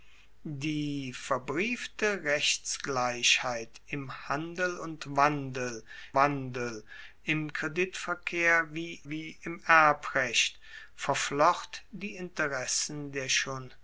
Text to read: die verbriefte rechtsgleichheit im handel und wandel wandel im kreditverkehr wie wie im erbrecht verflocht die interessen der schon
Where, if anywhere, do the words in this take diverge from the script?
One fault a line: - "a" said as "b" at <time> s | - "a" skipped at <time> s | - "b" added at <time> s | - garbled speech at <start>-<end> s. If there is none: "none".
none